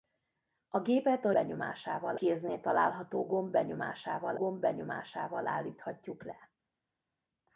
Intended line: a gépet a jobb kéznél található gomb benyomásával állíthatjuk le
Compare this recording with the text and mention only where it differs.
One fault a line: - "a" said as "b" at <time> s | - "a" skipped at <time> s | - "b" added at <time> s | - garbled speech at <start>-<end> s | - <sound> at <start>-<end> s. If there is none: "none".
- "jobb" said as "benyomásával" at 1.3 s
- "gomb benyomásával" added at 4.4 s